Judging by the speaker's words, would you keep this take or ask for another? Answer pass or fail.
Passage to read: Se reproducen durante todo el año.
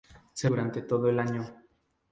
fail